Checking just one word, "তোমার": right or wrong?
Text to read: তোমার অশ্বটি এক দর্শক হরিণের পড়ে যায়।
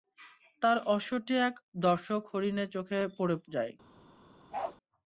wrong